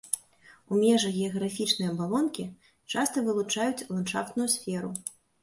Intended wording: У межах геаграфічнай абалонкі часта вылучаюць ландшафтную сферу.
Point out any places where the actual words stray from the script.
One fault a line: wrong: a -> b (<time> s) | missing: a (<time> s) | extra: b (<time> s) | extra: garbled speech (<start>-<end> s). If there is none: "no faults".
no faults